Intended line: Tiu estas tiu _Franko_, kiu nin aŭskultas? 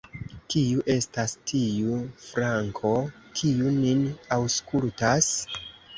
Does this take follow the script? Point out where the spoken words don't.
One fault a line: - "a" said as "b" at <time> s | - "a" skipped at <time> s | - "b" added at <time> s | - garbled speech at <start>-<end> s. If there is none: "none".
- "Tiu" said as "Kiu" at 0.5 s